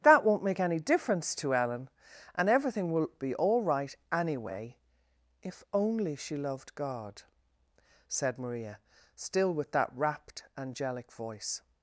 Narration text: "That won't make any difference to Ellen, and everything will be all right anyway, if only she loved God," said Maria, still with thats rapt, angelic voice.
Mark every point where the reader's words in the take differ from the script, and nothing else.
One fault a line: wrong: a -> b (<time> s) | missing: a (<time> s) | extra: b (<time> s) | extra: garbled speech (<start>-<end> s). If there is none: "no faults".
wrong: thats -> that (9.7 s)